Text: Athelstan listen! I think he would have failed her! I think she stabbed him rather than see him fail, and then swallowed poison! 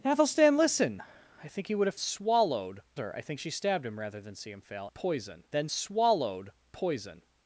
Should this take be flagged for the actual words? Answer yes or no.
yes